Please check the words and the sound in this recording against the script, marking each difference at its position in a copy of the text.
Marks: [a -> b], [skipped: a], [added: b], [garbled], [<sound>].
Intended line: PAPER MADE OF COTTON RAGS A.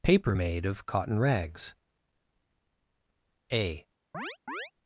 PAPER MADE OF COTTON RAGS A. [chirp]